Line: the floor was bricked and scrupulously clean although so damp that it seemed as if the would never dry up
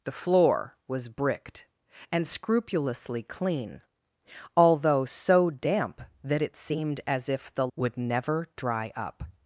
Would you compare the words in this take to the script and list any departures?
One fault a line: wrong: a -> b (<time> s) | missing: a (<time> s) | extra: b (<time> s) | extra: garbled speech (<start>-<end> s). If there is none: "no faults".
no faults